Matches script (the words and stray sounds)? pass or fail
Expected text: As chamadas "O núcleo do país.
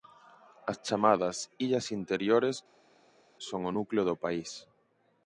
fail